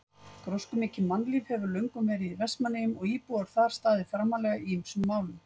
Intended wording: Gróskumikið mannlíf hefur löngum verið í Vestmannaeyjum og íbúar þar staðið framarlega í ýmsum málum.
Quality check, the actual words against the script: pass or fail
pass